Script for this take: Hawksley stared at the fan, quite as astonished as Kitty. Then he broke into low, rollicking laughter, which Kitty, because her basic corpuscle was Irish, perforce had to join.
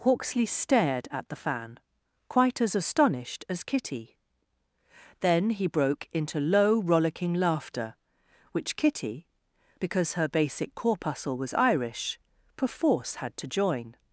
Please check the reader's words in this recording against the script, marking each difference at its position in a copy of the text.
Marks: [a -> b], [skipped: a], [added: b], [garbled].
Hawksley stared at the fan, quite as astonished as Kitty. Then he broke into low, rollicking laughter, which Kitty, because her basic corpuscle was Irish, perforce had to join.